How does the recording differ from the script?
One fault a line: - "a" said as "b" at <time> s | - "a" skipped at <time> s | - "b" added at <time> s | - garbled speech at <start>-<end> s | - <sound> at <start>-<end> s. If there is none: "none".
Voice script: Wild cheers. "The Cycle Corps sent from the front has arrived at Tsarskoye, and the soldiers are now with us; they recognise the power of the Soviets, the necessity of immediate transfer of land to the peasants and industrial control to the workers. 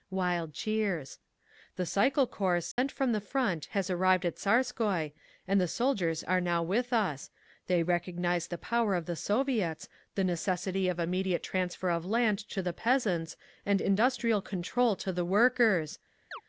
- dropout at 2.7-2.8 s
- chirp at 16.3-16.4 s